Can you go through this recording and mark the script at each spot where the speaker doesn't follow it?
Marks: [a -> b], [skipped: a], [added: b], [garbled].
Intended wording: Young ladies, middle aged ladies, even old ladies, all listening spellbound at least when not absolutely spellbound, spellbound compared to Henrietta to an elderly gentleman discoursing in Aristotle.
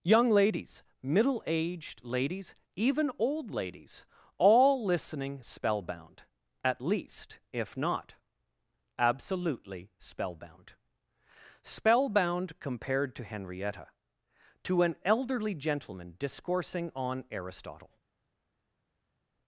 Young ladies, middle aged ladies, even old ladies, all listening spellbound at least [when -> if] not absolutely spellbound, spellbound compared to Henrietta to an elderly gentleman discoursing [in -> on] Aristotle.